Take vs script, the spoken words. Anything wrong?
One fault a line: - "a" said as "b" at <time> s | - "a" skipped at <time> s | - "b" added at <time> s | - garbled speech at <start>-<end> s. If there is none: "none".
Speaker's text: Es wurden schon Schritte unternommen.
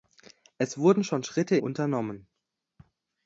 none